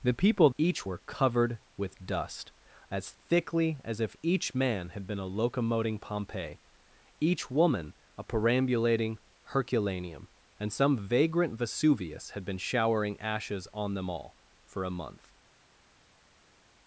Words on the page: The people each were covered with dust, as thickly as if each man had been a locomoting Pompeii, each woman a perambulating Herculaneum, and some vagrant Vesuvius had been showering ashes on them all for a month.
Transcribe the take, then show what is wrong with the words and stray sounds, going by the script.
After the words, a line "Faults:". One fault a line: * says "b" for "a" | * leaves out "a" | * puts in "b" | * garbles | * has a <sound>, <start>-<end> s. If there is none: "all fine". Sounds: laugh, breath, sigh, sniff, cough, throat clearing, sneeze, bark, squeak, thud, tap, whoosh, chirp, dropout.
The people each were covered with dust, as thickly as if each man had been a locomoting Pompeii, each woman a perambulating Herculaneum, and some vagrant Vesuvius had been showering ashes on them all for a month.
Faults:
all fine